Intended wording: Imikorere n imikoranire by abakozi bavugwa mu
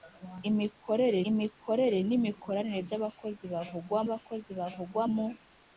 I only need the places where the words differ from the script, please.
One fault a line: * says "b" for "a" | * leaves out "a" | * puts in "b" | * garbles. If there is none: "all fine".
* puts in "imikorere"
* puts in "abakozi bavugwa"